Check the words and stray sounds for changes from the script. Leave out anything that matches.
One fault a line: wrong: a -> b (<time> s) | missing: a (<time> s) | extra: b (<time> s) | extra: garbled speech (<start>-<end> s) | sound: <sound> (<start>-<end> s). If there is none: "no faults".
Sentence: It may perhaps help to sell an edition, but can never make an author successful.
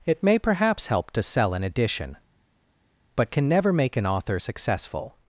no faults